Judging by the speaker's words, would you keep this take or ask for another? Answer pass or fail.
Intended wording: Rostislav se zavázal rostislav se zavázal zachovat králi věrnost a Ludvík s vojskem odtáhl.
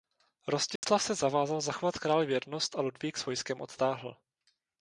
fail